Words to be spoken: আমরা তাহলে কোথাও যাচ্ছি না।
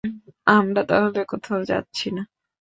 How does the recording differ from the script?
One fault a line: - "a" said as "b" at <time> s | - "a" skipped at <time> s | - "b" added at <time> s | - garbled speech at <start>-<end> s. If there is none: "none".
none